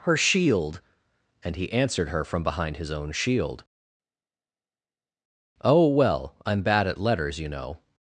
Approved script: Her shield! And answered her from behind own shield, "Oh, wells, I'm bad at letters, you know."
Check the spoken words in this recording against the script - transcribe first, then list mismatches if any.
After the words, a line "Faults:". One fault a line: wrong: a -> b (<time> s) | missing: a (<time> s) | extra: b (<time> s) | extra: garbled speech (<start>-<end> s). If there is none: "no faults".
Her shield! And he answered her from behind his own shield, "Oh, well, I'm bad at letters, you know."
Faults:
extra: he (1.6 s)
extra: his (2.8 s)
wrong: wells -> well (5.9 s)